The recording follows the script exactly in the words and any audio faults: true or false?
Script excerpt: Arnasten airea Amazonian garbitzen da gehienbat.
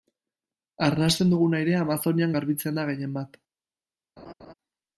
false